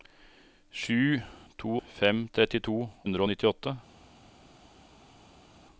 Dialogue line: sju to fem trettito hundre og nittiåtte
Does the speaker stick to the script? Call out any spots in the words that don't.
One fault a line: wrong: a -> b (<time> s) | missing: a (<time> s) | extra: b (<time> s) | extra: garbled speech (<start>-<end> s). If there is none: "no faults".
no faults